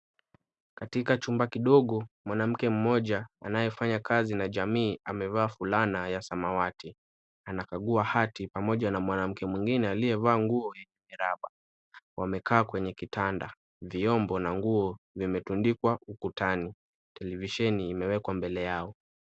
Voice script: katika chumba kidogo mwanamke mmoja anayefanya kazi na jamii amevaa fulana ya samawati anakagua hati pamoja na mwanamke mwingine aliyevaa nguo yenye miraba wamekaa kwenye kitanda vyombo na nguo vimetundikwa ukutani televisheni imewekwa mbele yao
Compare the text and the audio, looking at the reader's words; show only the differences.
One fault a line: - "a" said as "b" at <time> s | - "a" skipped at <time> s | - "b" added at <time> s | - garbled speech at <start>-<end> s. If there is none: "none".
none